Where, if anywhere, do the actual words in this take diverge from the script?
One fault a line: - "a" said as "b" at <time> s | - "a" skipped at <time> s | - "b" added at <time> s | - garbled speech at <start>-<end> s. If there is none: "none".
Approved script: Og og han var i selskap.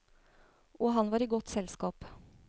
- "og" skipped at 0.9 s
- "godt" added at 1.3 s